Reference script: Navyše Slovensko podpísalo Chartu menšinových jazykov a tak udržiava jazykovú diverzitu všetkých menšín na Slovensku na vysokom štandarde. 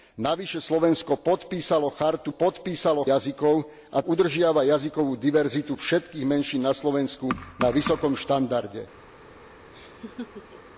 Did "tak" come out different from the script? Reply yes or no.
yes